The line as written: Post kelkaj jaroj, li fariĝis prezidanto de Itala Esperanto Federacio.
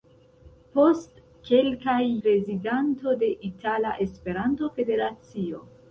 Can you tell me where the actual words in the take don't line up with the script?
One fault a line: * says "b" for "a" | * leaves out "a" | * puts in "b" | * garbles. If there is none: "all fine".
* leaves out "jaroj li fariĝis"